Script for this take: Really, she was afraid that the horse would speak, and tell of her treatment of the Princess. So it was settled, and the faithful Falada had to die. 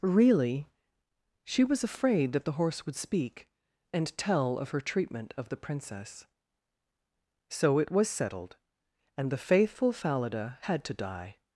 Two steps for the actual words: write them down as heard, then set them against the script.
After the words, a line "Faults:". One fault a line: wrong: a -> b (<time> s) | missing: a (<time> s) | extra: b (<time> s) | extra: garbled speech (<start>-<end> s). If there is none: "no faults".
Really, she was afraid that the horse would speak, and tell of her treatment of the Princess. So it was settled, and the faithful Falada had to die.
Faults:
no faults